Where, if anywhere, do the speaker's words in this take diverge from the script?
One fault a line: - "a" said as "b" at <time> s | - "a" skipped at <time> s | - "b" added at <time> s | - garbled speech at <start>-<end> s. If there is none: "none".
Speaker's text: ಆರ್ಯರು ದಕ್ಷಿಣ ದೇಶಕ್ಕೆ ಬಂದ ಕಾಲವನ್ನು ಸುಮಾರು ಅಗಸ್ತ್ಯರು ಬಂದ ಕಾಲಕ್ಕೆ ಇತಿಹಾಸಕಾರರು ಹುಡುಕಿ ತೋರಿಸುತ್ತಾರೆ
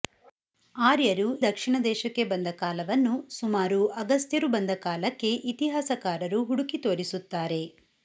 none